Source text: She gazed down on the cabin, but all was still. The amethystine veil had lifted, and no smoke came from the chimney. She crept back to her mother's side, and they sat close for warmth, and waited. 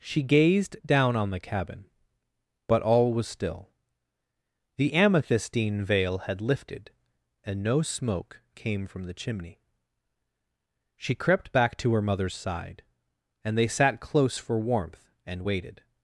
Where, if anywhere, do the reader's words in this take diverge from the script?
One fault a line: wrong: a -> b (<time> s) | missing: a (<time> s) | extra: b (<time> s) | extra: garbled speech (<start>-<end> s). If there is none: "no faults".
no faults